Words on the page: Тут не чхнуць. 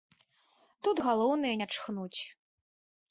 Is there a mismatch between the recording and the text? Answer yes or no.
yes